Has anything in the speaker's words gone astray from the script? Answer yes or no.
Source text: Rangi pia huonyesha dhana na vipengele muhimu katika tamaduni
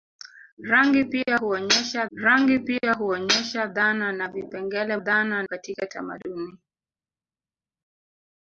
yes